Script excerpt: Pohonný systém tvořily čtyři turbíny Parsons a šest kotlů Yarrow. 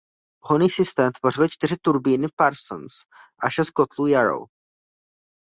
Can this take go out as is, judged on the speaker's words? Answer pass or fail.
pass